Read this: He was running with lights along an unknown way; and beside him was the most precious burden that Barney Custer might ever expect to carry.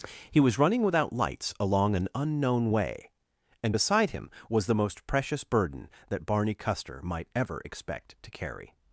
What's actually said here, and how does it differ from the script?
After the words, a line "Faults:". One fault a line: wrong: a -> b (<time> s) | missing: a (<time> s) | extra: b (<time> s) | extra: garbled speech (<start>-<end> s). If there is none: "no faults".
He was running without lights along an unknown way; and beside him was the most precious burden that Barney Custer might ever expect to carry.
Faults:
wrong: with -> without (0.8 s)